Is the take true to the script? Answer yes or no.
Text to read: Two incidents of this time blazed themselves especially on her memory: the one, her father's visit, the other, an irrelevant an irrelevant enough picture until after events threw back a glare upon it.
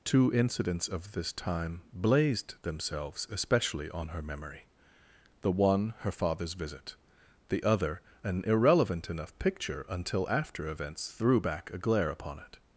no